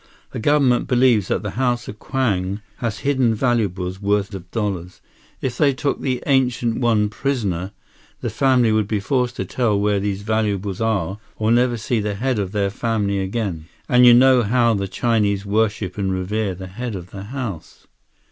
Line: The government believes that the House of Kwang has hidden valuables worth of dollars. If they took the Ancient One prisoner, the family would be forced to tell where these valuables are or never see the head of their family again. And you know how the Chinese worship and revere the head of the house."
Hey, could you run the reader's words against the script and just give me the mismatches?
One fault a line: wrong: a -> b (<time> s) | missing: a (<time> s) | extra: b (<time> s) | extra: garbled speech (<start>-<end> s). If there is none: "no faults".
no faults